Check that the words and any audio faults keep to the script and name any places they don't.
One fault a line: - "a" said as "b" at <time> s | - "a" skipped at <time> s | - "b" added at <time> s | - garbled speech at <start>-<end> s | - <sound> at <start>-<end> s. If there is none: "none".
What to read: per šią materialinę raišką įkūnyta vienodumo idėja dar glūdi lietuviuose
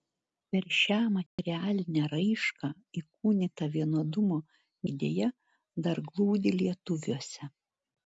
- dropout at 1.3-1.4 s